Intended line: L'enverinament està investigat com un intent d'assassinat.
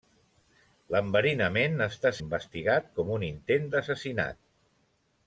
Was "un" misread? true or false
false